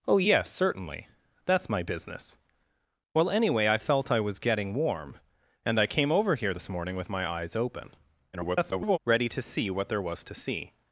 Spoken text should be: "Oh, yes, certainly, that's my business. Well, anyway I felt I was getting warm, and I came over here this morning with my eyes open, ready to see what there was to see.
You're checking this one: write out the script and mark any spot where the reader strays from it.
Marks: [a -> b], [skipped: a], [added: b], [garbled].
"Oh, yes, certainly, that's my business. Well, anyway I felt I was getting warm, and I came over here this morning with my eyes open, [garbled] ready to see what there was to see.